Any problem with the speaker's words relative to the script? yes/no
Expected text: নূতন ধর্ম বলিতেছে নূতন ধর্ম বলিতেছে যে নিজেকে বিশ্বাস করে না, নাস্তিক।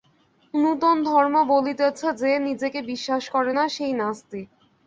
yes